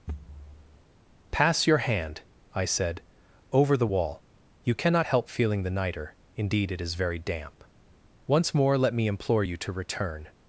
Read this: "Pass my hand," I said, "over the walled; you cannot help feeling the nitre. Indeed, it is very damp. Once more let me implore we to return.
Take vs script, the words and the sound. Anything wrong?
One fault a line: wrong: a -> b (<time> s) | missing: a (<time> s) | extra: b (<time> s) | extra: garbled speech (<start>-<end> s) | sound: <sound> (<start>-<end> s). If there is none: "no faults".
sound: thud (0.1-0.8 s)
wrong: my -> your (1.7 s)
wrong: walled -> wall (3.8 s)
wrong: we -> you (9.4 s)